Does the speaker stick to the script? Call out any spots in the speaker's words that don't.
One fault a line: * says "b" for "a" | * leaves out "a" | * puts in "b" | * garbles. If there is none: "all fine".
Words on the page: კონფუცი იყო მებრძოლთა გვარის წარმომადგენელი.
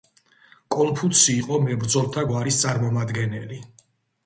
all fine